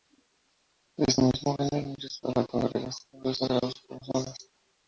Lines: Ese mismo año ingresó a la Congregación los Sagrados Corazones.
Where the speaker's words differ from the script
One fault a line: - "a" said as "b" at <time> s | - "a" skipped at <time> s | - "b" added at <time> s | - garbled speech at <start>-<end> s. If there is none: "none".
none